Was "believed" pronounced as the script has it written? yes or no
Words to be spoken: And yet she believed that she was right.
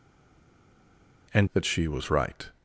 no